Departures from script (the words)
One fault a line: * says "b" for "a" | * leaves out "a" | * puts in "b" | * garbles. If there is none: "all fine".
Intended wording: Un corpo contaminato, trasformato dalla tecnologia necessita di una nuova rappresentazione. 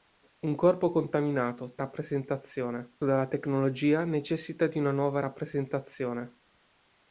* says "rappresentazione" for "trasformato"